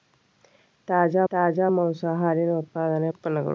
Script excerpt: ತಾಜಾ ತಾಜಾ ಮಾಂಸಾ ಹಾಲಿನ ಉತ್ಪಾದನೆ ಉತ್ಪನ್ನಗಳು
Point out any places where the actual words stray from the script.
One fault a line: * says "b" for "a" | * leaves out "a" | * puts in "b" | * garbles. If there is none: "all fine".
all fine